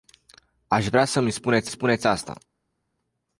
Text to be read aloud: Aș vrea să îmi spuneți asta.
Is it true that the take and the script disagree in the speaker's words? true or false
true